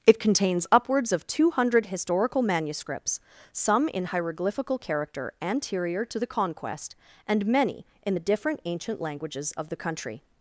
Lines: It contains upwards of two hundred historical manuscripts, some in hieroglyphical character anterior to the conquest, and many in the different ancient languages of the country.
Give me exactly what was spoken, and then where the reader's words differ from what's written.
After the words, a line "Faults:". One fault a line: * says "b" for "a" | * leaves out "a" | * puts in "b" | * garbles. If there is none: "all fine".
It contains upwards of two hundred historical manuscripts, some in hieroglyphical character anterior to the conquest, and many in the different ancient languages of the country.
Faults:
all fine